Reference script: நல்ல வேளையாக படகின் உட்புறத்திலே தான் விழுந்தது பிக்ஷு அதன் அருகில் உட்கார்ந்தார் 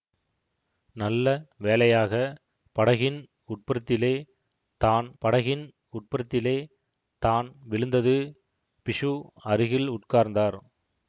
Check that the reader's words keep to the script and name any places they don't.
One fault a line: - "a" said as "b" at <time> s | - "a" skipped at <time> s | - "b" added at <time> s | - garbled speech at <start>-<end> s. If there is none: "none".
- "படகின் உட்புறத்திலே தான்" added at 5.2 s
- "அதன்" skipped at 9.1 s